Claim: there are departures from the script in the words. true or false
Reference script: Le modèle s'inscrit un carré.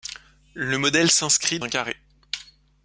false